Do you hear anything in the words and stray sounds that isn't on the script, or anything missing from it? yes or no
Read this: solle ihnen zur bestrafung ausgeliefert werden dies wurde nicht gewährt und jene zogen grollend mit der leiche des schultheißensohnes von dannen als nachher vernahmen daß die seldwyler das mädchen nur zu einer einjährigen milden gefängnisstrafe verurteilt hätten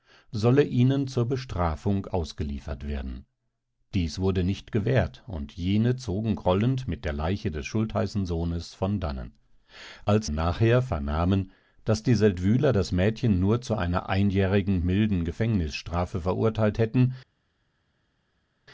no